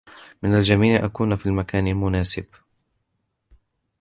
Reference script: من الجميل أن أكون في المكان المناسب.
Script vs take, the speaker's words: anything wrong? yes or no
yes